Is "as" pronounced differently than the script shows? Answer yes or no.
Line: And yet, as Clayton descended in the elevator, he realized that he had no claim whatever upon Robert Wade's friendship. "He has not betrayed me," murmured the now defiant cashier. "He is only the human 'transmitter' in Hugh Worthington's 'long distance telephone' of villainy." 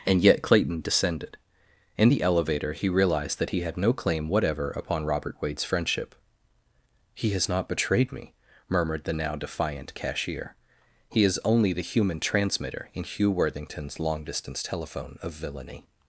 yes